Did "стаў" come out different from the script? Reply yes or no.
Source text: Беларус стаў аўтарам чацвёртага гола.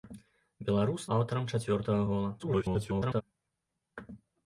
yes